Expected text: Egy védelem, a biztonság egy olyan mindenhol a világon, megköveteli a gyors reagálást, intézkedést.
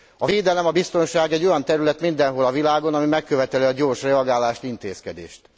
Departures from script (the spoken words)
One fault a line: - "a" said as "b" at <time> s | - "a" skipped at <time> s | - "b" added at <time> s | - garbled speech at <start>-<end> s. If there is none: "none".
- "Egy" said as "A" at 0.2 s
- "terület" added at 1.6 s
- "ami" added at 2.9 s